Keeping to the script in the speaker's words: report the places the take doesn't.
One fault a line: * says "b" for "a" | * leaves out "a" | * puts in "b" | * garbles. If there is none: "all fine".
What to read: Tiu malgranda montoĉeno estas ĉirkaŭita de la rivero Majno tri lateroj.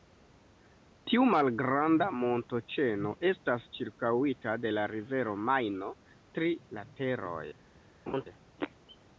all fine